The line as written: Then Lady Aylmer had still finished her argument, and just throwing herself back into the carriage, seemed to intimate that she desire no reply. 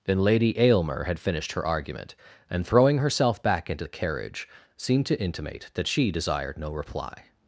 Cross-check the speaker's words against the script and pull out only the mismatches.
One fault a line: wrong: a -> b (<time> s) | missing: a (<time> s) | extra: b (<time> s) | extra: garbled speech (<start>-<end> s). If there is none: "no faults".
missing: still (1.2 s)
missing: just (2.6 s)
wrong: desire -> desired (6.1 s)